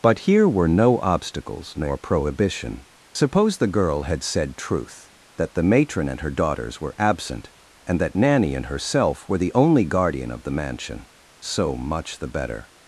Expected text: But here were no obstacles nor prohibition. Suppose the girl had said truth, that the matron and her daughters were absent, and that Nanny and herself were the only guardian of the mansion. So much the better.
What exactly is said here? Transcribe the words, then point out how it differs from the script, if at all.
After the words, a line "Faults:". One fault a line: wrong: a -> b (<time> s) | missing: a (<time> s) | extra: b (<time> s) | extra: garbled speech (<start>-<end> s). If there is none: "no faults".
But here were no obstacles nor prohibition. Suppose the girl had said truth, that the matron and her daughters were absent, and that Nanny and herself were the only guardian of the mansion. So much the better.
Faults:
no faults